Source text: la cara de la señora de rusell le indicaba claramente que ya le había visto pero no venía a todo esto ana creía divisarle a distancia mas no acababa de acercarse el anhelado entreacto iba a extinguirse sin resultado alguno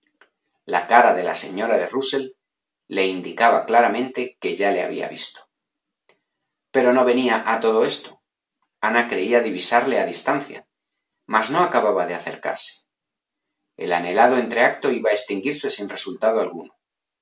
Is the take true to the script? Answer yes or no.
yes